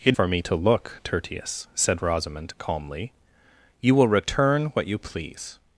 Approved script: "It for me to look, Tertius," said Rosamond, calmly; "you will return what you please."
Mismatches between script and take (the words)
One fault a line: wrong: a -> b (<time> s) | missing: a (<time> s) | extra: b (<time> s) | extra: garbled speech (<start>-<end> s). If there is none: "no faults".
no faults